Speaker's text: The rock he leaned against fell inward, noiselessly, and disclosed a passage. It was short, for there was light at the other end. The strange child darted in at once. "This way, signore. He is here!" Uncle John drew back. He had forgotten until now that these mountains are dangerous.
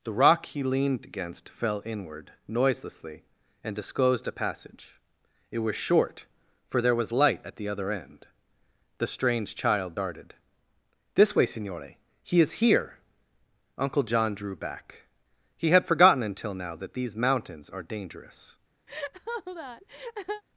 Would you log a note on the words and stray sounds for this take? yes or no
yes